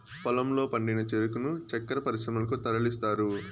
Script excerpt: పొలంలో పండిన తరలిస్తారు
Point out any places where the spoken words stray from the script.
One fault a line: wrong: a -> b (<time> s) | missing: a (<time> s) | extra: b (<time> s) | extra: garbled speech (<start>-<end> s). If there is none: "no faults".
extra: చెరుకును చక్కర పరిశ్రమలకు (1.1 s)